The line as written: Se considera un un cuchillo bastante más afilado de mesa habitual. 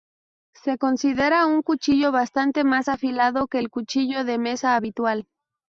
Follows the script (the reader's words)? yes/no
no